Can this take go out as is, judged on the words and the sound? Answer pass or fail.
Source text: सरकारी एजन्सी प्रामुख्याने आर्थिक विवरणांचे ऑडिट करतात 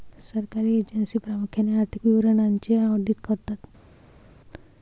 pass